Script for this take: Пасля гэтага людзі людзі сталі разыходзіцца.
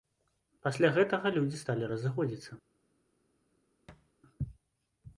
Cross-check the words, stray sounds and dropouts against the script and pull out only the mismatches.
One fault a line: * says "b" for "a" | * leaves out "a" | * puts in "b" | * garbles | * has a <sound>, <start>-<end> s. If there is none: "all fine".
* leaves out "людзі"
* has a thud, 3.9-4.1 s